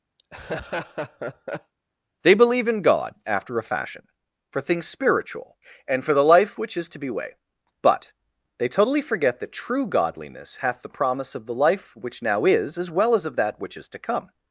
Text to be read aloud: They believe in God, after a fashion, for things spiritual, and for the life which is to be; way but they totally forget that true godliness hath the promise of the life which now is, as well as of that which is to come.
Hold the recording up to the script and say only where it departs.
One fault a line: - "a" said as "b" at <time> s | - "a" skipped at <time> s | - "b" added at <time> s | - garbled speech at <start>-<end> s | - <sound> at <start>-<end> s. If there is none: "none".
- laugh at 0.2-1.7 s